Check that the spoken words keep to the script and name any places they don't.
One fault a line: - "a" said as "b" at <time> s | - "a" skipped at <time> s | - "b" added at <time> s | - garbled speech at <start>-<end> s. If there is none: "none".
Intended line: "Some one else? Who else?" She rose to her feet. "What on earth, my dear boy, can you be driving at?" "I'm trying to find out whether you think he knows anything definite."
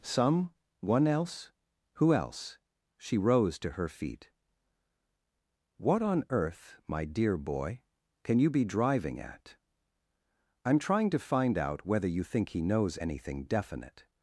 none